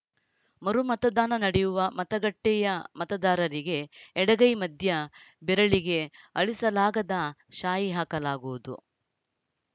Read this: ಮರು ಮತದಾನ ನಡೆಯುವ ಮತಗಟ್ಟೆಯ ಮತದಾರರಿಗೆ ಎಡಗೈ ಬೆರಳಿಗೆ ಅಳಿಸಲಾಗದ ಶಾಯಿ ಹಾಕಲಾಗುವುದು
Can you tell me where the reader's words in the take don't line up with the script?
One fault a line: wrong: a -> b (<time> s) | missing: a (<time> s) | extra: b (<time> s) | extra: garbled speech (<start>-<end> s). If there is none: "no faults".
extra: ಮಧ್ಯ (4.6 s)